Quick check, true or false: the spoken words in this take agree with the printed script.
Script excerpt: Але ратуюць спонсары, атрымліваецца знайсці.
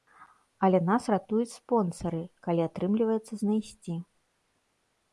false